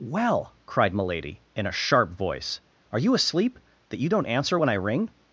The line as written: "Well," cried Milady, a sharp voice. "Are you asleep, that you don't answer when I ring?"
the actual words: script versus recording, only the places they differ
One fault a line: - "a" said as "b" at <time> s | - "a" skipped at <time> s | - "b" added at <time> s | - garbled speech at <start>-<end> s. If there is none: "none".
- "in" added at 1.6 s